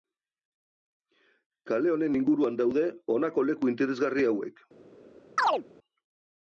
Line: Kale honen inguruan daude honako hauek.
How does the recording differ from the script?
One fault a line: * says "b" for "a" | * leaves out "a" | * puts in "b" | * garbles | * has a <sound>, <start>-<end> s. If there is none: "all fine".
* puts in "leku interesgarri"
* has a chirp, 5.4-5.6 s